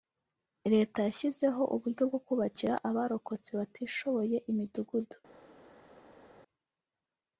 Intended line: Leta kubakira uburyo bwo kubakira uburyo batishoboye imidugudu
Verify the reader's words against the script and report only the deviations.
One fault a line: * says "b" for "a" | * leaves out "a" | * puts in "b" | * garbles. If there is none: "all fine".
* says "yashyizeho" for "kubakira"
* says "abarokotse" for "uburyo"